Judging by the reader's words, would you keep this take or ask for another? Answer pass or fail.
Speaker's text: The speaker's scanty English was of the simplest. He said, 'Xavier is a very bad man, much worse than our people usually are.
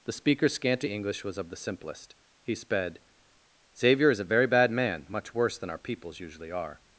fail